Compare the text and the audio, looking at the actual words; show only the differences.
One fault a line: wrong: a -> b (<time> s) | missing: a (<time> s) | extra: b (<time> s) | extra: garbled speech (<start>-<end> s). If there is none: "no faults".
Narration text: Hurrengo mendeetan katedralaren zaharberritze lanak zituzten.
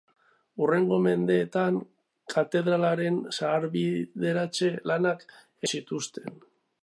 no faults